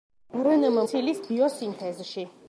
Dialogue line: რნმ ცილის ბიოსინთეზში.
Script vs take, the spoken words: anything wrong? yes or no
no